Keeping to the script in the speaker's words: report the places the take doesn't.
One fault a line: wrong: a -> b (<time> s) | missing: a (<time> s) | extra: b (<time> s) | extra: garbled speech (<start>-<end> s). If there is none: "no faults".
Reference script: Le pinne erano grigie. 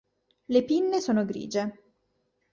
wrong: erano -> sono (1.0 s)